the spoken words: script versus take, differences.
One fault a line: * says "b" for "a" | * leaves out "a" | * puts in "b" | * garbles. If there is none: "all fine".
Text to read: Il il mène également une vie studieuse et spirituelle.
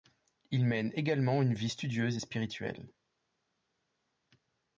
* leaves out "il"